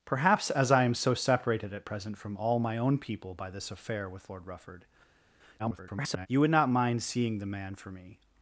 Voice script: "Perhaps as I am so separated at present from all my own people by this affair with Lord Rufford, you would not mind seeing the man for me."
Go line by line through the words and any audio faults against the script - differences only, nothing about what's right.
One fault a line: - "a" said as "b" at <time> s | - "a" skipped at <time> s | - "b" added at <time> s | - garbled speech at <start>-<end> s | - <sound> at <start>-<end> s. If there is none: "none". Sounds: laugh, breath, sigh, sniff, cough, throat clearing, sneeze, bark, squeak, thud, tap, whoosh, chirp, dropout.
- garbled speech at 5.6-6.3 s